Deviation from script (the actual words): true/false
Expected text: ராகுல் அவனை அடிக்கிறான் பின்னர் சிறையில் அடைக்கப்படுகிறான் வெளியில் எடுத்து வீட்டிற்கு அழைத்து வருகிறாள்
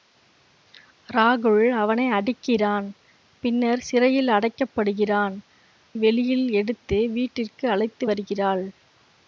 false